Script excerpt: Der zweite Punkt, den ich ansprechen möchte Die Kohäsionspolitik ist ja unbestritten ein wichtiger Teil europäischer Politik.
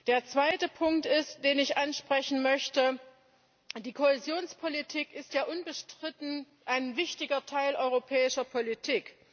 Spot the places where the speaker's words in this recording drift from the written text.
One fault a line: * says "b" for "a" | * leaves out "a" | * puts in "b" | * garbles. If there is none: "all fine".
all fine